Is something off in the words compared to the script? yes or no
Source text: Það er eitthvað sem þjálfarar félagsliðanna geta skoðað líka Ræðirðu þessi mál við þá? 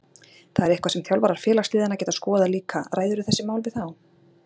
no